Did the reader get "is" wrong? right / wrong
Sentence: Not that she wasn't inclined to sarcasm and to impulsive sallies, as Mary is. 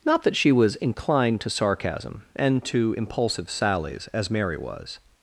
wrong